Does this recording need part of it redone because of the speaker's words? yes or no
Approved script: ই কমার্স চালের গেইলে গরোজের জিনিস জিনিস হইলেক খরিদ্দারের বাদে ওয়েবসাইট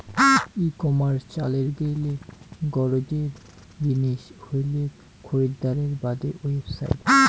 yes